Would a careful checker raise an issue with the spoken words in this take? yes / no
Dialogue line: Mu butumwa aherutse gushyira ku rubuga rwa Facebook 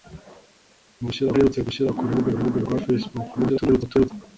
yes